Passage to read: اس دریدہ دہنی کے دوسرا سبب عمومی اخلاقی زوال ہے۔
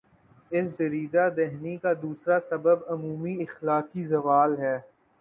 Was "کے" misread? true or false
true